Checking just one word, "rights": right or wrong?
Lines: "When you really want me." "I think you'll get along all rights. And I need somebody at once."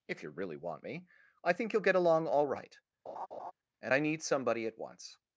wrong